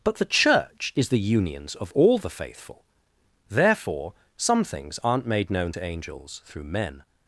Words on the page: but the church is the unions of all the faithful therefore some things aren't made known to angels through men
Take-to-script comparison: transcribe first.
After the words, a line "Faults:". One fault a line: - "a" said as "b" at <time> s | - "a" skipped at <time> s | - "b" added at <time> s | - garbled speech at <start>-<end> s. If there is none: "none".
but the church is the unions of all the faithful therefore some things aren't made known to angels through men
Faults:
none